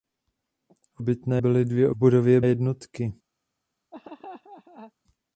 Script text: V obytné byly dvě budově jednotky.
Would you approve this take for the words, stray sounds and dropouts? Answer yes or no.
no